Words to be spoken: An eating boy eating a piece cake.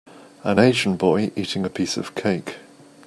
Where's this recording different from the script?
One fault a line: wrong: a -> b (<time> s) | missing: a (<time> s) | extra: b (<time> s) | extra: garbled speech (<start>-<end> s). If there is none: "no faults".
wrong: eating -> asian (0.6 s)
extra: of (2.0 s)